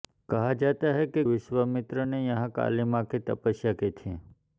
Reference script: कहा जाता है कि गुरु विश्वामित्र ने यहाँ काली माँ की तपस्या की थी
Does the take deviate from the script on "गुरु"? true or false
true